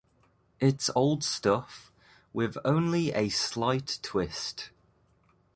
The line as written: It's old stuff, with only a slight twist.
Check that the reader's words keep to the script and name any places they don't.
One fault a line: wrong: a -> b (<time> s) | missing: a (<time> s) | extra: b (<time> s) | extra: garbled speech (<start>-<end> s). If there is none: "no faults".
no faults